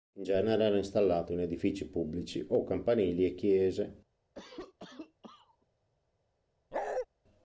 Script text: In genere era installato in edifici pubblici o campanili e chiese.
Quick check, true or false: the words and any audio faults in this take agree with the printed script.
false